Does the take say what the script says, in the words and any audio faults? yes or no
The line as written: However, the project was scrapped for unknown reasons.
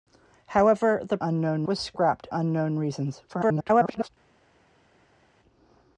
no